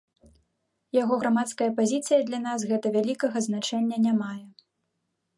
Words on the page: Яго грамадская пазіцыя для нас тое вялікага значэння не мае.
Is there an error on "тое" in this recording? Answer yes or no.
yes